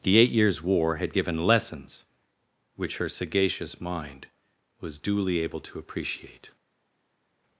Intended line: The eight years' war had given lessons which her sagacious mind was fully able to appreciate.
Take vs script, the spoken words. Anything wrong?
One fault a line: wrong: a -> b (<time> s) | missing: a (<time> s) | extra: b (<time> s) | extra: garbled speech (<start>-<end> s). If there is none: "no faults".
wrong: fully -> duly (5.0 s)